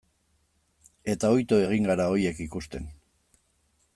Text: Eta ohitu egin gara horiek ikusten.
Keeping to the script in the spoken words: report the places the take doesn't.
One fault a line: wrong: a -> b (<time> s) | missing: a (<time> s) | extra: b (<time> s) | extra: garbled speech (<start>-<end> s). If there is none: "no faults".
no faults